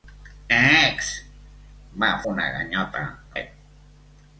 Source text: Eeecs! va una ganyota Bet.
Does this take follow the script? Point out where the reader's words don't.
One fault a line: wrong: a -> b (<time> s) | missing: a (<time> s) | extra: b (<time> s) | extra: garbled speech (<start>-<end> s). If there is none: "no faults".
no faults